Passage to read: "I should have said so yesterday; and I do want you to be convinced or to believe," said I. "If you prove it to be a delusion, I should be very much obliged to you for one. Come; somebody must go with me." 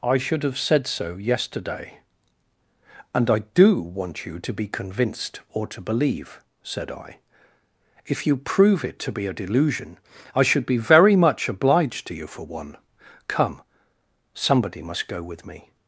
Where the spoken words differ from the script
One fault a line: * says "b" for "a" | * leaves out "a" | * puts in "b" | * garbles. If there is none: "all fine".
all fine